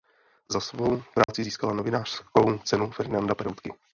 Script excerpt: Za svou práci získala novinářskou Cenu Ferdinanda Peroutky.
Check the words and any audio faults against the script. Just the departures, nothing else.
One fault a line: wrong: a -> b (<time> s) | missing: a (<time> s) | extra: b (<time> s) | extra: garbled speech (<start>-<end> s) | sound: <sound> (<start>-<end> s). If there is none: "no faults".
sound: dropout (1.2-1.3 s)